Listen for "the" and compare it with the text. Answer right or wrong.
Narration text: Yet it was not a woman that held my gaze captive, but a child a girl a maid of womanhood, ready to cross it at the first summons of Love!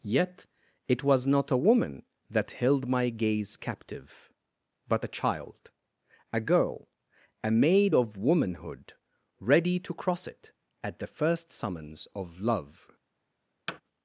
right